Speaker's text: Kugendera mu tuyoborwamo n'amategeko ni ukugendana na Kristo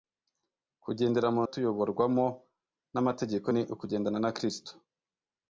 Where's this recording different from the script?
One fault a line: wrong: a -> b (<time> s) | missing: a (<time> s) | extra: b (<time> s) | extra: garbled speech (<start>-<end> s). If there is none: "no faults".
no faults